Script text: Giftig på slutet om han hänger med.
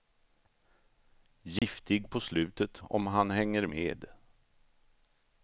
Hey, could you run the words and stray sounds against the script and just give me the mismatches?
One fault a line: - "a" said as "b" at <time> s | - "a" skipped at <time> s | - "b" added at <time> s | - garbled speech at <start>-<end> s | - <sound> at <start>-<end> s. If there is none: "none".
- dropout at 1.6-1.6 s